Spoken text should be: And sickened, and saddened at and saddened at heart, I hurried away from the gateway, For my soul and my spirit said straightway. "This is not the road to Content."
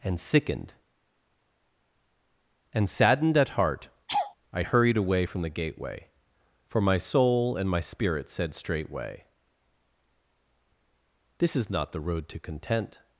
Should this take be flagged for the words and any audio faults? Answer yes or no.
yes